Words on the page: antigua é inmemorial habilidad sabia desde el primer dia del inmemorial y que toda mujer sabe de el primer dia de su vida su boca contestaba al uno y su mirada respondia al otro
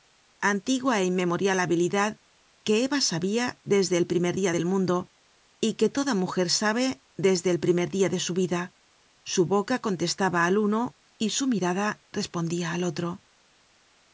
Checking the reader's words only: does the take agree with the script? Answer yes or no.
no